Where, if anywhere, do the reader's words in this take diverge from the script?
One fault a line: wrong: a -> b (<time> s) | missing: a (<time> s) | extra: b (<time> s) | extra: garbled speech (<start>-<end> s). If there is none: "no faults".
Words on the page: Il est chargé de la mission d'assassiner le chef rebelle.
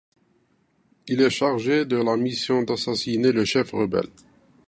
no faults